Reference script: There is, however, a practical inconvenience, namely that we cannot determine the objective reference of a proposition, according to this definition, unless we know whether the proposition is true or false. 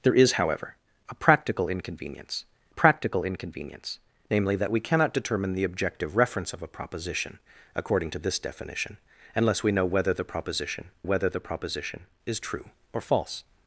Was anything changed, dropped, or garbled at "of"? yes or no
no